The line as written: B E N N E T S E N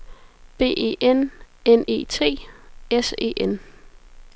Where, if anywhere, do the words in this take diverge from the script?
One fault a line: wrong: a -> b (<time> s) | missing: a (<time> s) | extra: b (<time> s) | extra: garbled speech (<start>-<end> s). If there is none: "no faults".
no faults